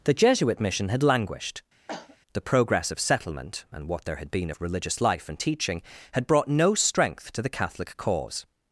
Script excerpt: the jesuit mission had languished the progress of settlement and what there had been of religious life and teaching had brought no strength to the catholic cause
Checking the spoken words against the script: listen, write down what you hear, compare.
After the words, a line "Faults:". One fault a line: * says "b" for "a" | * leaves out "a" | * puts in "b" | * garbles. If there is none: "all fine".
the jesuit mission had languished the progress of settlement and what there had been of religious life and teaching had brought no strength to the catholic cause
Faults:
all fine